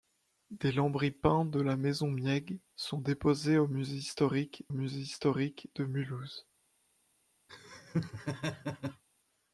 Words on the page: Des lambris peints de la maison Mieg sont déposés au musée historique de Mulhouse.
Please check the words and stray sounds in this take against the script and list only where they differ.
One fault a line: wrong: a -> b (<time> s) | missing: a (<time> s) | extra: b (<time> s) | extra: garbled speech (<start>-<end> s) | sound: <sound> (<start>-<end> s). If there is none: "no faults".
extra: musée historique (4.7 s)
sound: laugh (7.5-9.0 s)